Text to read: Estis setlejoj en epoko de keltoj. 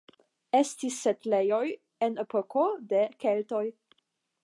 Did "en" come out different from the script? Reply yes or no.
no